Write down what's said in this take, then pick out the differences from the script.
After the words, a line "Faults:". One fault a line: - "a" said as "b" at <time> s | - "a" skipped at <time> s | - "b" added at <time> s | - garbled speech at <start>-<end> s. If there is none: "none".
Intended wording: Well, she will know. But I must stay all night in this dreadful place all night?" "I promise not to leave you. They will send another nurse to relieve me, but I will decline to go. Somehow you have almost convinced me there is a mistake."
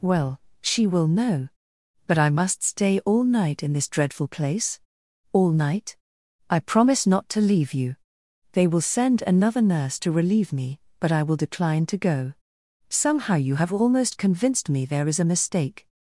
Well, she will know. But I must stay all night in this dreadful place all night?" "I promise not to leave you. They will send another nurse to relieve me, but I will decline to go. Somehow you have almost convinced me there is a mistake."
Faults:
none